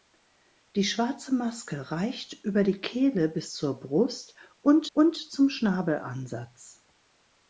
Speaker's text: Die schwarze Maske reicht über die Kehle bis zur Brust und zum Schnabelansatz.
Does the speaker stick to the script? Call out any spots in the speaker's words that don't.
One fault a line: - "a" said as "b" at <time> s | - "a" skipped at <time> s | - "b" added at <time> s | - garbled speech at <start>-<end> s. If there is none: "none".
- "und" added at 4.9 s